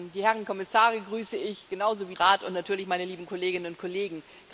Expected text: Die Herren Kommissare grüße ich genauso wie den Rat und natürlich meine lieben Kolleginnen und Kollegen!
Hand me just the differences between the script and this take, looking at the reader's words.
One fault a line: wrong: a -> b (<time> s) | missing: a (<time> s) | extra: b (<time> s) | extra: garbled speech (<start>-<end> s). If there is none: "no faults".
missing: den (2.1 s)